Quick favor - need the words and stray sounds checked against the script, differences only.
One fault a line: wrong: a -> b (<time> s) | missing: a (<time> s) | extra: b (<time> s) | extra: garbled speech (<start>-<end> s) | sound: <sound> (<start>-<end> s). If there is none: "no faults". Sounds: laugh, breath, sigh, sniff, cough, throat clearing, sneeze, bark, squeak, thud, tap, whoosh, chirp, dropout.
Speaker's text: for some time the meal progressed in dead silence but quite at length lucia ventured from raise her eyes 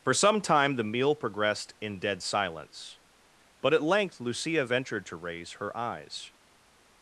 missing: quite (3.7 s)
wrong: from -> to (5.1 s)